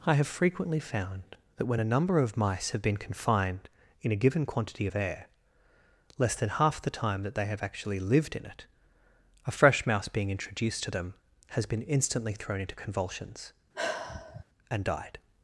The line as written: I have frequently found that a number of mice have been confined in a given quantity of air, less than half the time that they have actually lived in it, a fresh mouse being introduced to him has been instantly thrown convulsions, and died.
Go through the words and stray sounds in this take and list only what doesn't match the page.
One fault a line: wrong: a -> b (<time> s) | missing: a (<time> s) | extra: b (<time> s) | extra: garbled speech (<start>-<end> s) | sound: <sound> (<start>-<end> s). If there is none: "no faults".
extra: when (1.7 s)
wrong: him -> them (10.9 s)
extra: into (12.6 s)
sound: sigh (13.7-14.4 s)